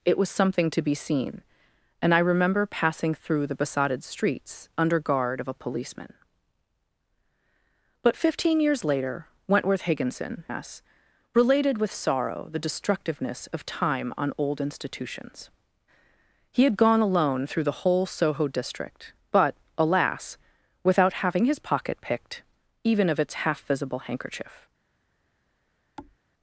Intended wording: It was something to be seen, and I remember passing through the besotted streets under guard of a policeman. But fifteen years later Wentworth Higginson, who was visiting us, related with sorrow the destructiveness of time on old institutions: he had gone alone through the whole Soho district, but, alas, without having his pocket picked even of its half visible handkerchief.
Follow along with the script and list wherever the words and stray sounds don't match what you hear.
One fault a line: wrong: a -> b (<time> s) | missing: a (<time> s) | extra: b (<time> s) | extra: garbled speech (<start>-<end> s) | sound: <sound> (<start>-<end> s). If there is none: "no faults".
missing: who was visiting (10.4 s)
sound: thud (26.0-26.2 s)